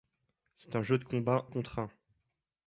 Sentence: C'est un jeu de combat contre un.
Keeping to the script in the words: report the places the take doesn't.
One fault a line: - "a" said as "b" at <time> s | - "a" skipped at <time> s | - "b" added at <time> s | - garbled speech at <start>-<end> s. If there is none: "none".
none